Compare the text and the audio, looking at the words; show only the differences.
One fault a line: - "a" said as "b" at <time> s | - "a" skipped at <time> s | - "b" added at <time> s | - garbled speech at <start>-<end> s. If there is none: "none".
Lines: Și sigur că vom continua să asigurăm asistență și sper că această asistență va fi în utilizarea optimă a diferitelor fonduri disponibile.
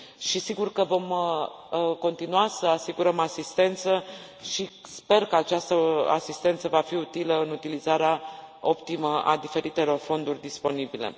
- "utilă" added at 6.9 s